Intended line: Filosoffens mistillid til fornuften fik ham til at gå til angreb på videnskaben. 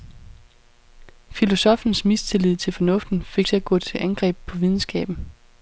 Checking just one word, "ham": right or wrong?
wrong